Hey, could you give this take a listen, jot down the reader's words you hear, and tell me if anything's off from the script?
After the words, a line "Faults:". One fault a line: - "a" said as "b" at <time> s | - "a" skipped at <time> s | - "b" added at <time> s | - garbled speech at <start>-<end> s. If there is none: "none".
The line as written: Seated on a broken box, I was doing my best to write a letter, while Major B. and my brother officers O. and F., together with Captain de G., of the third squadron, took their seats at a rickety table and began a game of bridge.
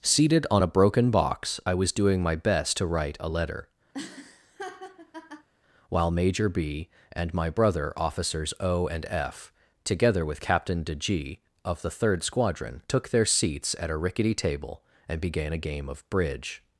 Seated on a broken box, I was doing my best to write a letter, while Major B. and my brother officers O. and F., together with Captain de G., of the third squadron, took their seats at a rickety table and began a game of bridge.
Faults:
none